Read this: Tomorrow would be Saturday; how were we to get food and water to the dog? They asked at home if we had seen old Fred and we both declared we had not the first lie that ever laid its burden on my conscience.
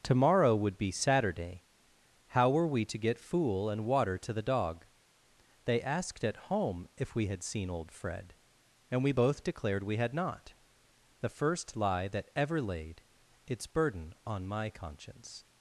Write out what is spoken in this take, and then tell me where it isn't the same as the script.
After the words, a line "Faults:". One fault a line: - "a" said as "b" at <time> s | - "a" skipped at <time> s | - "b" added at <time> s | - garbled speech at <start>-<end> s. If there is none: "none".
Tomorrow would be Saturday; how were we to get fool and water to the dog? They asked at home if we had seen old Fred and we both declared we had not the first lie that ever laid its burden on my conscience.
Faults:
- "food" said as "fool" at 3.2 s